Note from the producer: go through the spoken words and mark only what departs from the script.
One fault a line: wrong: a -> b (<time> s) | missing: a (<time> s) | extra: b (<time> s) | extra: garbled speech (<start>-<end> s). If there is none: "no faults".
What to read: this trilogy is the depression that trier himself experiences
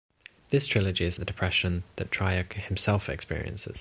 no faults